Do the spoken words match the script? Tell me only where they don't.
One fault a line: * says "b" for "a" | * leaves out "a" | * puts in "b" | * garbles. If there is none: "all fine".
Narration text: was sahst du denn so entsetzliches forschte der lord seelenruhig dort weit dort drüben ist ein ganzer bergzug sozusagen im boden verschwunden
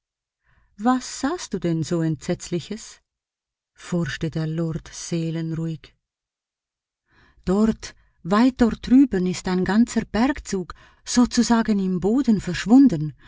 all fine